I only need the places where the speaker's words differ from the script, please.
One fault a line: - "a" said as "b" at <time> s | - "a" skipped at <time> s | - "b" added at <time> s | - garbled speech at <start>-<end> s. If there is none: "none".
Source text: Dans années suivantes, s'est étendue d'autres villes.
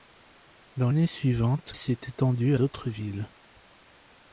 none